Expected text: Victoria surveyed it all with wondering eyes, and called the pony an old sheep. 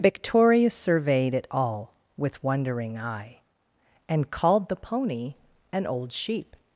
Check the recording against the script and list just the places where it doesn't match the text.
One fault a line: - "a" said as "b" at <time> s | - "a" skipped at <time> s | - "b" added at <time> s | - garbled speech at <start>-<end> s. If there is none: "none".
- "eyes" said as "eye" at 3.0 s